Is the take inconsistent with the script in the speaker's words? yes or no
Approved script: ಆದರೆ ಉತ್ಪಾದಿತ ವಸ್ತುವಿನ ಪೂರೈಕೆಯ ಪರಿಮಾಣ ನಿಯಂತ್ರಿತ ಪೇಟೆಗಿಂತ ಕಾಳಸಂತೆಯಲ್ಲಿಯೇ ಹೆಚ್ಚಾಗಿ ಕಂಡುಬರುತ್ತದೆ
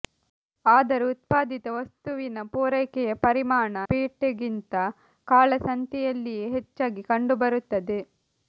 yes